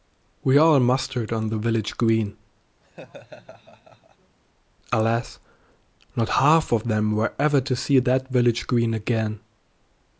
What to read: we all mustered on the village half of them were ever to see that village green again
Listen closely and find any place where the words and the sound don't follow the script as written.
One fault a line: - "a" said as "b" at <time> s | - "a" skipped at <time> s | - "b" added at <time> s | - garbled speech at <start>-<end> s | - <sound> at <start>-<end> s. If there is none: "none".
- "green alas not" added at 1.9 s
- laugh at 2.8-4.4 s